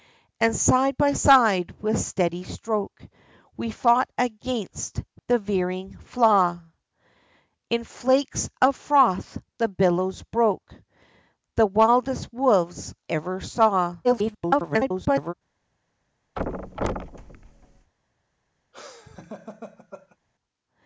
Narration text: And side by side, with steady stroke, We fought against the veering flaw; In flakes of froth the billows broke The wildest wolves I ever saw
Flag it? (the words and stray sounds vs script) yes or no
yes